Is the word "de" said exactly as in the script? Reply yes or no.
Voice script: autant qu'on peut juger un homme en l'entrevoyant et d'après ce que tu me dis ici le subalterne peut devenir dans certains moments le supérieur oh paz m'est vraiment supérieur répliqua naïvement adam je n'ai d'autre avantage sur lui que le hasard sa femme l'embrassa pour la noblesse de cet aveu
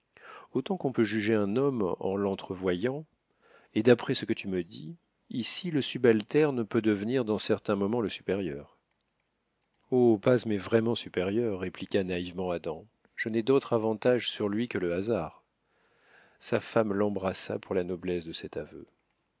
yes